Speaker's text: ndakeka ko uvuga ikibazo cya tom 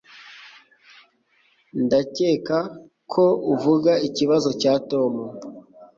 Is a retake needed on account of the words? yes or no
no